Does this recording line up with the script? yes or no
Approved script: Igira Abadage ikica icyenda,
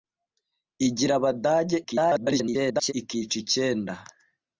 no